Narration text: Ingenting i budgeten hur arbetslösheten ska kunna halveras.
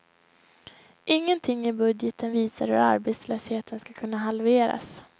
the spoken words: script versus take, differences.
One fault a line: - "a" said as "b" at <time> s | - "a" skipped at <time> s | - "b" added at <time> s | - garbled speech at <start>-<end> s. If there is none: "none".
- "visar" added at 2.3 s